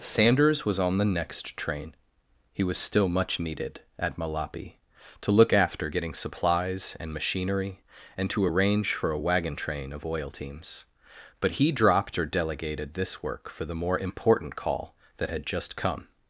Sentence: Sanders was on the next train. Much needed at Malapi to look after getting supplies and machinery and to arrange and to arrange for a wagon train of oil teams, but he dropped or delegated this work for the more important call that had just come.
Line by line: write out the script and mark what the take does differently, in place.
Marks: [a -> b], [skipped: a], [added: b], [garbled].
Sanders was on the next train. [added: He was still] Much needed at Malapi to look after getting supplies and machinery and to arrange [skipped: and to arrange] for a wagon train of oil teams, but he dropped or delegated this work for the more important call that had just come.